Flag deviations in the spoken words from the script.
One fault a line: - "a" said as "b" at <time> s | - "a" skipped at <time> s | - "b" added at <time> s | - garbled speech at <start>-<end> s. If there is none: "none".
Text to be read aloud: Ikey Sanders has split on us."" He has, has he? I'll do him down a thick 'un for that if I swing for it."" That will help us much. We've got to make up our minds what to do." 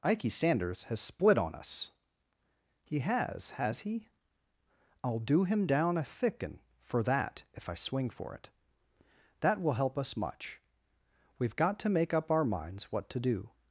none